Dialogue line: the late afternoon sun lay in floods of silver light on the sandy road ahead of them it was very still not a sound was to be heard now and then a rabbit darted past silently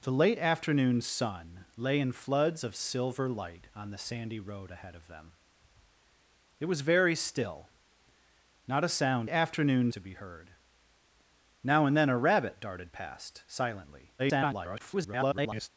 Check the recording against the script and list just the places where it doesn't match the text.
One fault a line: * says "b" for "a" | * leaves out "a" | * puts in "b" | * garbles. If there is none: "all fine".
* says "afternoon" for "was"
* garbles